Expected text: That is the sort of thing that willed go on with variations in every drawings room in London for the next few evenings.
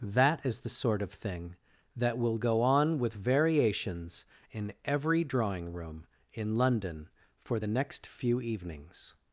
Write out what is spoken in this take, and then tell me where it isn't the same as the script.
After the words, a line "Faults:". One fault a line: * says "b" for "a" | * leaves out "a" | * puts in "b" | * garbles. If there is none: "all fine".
That is the sort of thing that will go on with variations in every drawing room in London for the next few evenings.
Faults:
* says "will" for "willed"
* says "drawing" for "drawings"